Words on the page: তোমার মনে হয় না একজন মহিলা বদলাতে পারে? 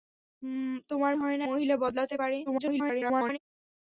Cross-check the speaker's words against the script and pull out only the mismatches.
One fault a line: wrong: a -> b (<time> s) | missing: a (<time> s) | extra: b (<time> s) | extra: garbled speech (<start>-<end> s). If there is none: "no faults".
missing: মনে (1.1 s)
missing: একজন (1.5 s)
extra: garbled speech (2.5-3.4 s)